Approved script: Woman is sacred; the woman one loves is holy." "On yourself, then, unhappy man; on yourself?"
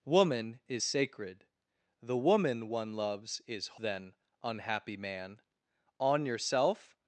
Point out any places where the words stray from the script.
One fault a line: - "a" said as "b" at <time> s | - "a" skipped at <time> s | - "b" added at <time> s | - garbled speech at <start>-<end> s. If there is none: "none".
- "holy On yourself" skipped at 3.8 s